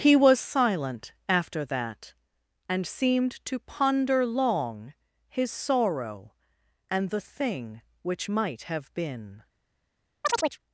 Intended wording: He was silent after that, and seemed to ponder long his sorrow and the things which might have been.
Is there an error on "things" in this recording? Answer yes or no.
yes